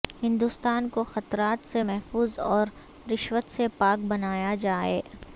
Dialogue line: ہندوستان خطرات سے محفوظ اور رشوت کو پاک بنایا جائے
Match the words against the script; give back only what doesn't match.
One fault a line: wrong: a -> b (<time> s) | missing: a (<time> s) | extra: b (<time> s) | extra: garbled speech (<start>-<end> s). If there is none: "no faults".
extra: کو (0.9 s)
wrong: کو -> سے (3.5 s)